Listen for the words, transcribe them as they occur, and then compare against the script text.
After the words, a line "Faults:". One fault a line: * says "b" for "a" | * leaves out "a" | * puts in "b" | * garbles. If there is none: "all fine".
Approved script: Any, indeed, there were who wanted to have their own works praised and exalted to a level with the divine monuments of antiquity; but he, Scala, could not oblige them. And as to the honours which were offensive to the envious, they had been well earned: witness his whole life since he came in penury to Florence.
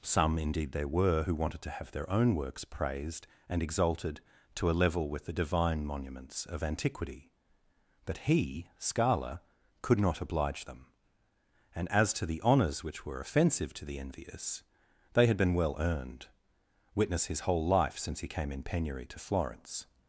Some, indeed, there were who wanted to have their own works praised and exalted to a level with the divine monuments of antiquity; but he, Scala, could not oblige them. And as to the honours which were offensive to the envious, they had been well earned: witness his whole life since he came in penury to Florence.
Faults:
* says "Some" for "Any"